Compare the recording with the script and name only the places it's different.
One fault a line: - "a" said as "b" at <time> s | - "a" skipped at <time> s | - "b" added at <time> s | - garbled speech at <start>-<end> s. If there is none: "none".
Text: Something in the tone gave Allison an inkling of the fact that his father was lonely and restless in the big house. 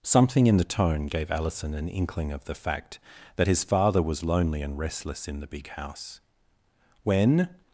- "When" added at 7.0 s